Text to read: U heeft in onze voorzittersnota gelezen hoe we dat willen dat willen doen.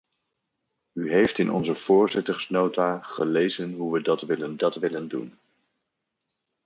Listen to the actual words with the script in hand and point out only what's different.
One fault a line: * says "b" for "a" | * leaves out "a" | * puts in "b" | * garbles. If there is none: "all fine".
all fine